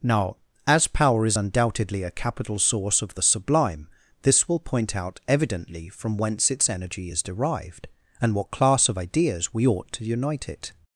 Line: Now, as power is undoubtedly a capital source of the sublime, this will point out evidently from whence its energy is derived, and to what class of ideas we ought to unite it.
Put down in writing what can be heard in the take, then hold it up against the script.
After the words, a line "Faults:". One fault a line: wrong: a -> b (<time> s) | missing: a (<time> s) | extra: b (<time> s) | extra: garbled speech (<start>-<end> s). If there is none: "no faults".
Now, as power is undoubtedly a capital source of the sublime, this will point out evidently from whence its energy is derived, and what class of ideas we ought to unite it.
Faults:
missing: to (8.3 s)